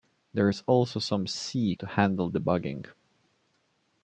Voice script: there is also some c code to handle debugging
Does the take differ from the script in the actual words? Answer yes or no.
yes